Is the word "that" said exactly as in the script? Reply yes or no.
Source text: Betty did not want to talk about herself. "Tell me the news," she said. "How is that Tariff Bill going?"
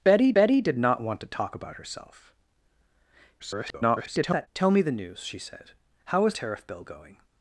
no